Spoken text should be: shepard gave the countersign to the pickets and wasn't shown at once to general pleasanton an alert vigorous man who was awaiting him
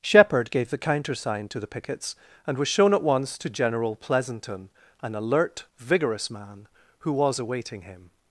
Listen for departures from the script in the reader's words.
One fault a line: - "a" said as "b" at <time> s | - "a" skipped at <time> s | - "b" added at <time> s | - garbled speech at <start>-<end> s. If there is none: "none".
- "wasn't" said as "was" at 2.6 s